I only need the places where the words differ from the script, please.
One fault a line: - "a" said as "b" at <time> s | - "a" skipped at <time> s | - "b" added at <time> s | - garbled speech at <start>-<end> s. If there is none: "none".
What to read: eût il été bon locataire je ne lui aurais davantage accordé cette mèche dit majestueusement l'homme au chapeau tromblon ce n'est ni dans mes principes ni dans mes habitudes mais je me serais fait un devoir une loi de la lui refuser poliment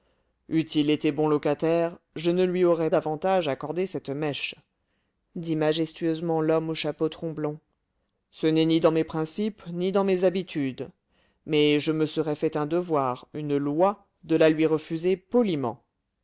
none